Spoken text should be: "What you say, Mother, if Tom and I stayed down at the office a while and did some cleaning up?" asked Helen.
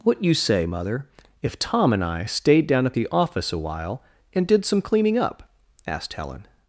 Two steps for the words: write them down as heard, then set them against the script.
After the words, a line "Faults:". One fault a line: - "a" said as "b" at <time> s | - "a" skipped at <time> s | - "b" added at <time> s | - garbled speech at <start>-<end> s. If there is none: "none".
"What you say, Mother, if Tom and I stayed down at the office a while and did some cleaning up?" asked Helen.
Faults:
none